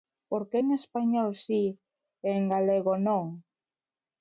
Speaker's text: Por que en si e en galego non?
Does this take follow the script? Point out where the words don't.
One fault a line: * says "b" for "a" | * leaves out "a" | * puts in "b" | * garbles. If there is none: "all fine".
* puts in "español"